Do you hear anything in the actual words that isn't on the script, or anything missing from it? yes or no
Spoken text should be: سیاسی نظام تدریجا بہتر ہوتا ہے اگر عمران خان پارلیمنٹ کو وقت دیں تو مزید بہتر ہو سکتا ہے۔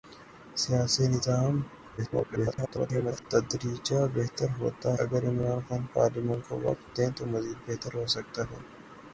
yes